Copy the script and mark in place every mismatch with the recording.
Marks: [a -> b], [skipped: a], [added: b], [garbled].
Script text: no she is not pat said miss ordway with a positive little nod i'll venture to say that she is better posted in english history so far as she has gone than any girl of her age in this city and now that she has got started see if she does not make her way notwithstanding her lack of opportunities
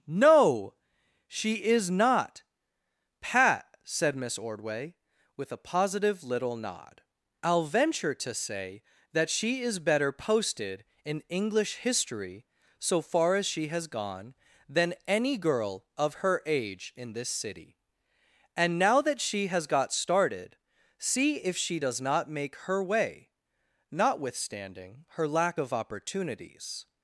no she is not pat said miss ordway with a positive little nod i'll venture to say that she is better posted in english history so far as she has gone than any girl of her age in this city and now that she has got started see if she does not make her way notwithstanding her lack of opportunities